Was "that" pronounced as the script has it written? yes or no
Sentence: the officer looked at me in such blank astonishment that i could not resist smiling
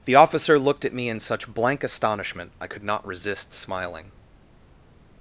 no